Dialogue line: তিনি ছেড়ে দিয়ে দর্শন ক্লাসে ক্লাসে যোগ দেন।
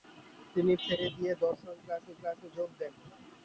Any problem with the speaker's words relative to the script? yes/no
no